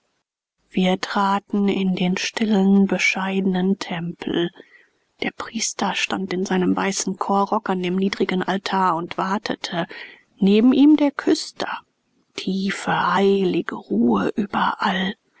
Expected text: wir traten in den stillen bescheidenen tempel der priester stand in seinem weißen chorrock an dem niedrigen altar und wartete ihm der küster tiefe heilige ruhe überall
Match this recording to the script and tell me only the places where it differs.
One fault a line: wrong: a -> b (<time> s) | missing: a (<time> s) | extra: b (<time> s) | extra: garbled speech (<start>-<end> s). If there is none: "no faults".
extra: neben (10.4 s)